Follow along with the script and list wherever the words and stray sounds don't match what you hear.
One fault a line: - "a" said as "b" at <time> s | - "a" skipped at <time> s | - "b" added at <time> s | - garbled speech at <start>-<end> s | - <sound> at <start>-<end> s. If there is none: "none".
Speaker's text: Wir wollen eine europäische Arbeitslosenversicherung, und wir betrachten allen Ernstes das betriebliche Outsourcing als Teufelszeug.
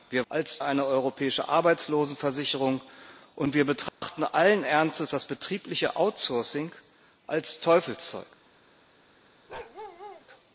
- "wollen" said as "als" at 0.3 s
- dropout at 3.9-4.0 s
- bark at 9.5-10.3 s